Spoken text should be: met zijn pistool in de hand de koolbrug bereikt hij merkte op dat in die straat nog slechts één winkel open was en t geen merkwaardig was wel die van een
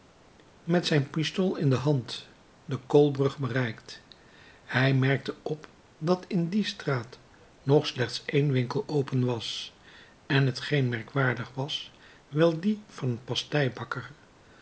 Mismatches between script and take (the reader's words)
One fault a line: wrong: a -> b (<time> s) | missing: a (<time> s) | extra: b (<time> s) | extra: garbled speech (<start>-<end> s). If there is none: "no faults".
no faults